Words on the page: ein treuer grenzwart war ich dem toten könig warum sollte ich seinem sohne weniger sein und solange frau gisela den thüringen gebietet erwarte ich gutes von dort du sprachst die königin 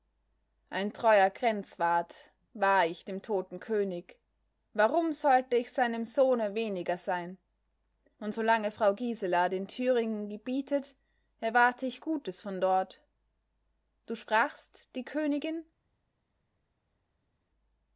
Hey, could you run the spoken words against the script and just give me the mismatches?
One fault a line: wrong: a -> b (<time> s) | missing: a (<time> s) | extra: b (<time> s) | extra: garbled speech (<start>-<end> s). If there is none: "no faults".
no faults